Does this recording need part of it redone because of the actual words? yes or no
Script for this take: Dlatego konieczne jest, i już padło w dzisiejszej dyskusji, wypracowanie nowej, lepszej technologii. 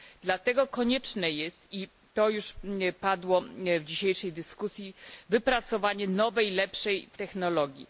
yes